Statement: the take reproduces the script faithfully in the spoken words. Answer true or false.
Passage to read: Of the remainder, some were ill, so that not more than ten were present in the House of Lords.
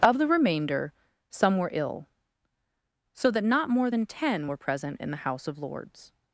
true